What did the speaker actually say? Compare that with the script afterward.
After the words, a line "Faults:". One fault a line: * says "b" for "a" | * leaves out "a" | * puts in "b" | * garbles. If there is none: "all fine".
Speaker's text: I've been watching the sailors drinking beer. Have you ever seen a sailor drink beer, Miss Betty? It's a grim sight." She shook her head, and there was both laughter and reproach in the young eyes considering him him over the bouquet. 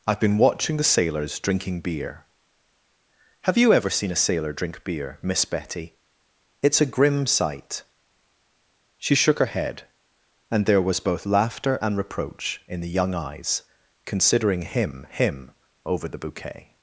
I've been watching the sailors drinking beer. Have you ever seen a sailor drink beer, Miss Betty? It's a grim sight." She shook her head, and there was both laughter and reproach in the young eyes considering him him over the bouquet.
Faults:
all fine